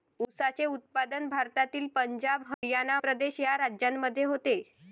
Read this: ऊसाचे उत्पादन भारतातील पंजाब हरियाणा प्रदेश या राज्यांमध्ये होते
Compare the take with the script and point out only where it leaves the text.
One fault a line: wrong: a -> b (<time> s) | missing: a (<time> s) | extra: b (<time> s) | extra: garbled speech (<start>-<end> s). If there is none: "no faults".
no faults